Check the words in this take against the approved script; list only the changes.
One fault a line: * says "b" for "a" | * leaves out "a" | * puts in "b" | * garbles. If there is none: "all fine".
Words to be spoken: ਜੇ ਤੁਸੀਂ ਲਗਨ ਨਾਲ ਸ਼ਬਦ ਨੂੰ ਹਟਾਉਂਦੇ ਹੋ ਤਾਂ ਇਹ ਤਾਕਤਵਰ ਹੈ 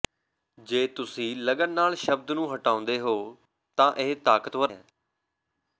all fine